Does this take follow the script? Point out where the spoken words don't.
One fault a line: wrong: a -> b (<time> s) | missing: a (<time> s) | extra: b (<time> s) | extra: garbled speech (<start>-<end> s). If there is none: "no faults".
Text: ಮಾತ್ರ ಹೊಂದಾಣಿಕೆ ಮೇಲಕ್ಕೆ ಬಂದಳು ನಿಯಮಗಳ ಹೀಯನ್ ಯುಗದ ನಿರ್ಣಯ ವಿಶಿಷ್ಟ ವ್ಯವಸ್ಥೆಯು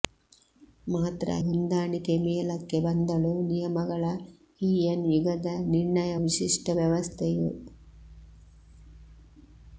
no faults